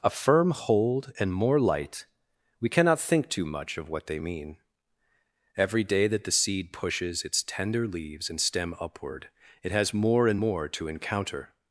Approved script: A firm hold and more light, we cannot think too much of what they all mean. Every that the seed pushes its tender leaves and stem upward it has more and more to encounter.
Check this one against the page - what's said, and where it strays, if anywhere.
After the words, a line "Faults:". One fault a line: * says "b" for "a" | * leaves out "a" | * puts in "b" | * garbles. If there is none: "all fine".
A firm hold and more light, we cannot think too much of what they mean. Every day that the seed pushes its tender leaves and stem upward it has more and more to encounter.
Faults:
* leaves out "all"
* puts in "day"